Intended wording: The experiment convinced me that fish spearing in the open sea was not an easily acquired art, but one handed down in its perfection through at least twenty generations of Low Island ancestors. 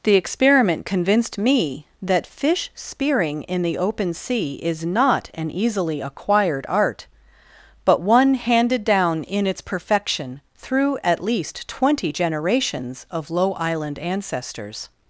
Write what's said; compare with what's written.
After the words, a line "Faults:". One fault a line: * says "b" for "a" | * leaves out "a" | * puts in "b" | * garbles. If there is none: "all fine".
The experiment convinced me that fish spearing in the open sea is not an easily acquired art, but one handed down in its perfection through at least twenty generations of Low Island ancestors.
Faults:
* says "is" for "was"